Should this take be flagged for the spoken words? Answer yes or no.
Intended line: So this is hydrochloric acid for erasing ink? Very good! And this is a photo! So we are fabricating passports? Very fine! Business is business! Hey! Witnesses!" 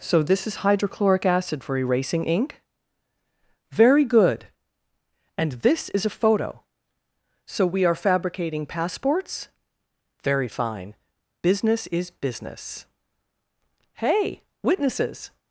no